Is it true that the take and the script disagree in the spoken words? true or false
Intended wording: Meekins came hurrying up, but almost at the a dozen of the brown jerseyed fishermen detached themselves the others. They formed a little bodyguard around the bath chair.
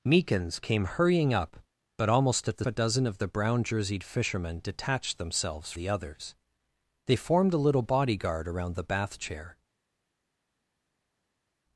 false